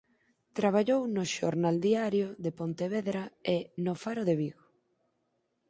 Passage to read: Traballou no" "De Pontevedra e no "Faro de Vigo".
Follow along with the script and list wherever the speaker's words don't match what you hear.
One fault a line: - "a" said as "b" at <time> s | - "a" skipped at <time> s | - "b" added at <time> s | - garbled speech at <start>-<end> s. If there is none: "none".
- "Xornal Diario" added at 1.4 s